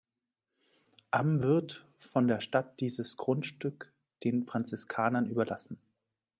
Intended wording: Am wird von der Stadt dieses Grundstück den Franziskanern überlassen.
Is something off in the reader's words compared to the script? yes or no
no